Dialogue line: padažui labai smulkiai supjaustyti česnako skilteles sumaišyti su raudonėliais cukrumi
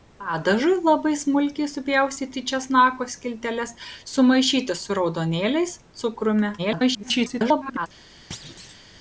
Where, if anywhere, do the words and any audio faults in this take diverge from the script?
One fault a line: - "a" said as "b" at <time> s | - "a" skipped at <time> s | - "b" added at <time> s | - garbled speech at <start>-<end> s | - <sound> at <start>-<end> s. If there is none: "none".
- garbled speech at 6.6-7.9 s
- thud at 8.3-8.9 s